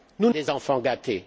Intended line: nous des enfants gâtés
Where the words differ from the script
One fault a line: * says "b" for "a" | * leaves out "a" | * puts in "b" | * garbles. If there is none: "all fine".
all fine